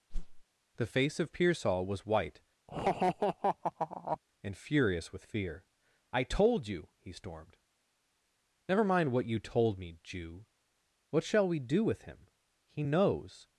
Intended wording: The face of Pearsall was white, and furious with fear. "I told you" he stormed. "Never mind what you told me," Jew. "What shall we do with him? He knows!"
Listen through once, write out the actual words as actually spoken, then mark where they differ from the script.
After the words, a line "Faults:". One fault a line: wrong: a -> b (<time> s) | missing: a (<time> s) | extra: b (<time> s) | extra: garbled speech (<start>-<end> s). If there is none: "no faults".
The face of Pearsall was white, and furious with fear. "I told you" he stormed. "Never mind what you told me," Jew. "What shall we do with him? He knows!"
Faults:
no faults